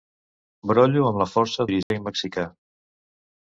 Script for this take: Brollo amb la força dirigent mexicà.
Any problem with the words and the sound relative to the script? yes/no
yes